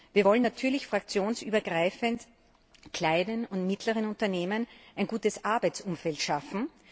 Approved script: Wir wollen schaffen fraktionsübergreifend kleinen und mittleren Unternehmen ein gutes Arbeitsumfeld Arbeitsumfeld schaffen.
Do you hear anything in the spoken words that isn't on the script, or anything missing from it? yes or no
yes